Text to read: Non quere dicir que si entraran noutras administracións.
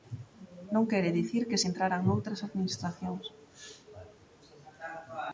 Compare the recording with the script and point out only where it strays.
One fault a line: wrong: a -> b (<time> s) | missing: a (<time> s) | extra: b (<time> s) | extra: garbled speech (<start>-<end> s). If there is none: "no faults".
no faults